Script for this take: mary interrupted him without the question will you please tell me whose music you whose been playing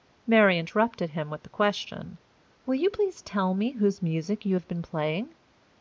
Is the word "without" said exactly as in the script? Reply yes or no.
no